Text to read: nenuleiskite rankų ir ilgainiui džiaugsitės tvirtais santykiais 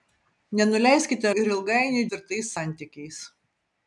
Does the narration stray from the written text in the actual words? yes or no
yes